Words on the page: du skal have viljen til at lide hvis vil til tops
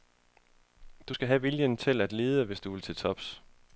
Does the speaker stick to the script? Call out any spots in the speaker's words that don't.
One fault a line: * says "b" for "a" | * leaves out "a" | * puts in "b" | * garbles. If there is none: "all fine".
* puts in "du"